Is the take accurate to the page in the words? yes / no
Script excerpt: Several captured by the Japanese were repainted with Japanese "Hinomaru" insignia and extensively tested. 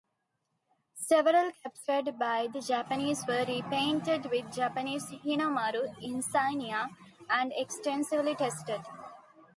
yes